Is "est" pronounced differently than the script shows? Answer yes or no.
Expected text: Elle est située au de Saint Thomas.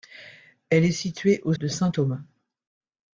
no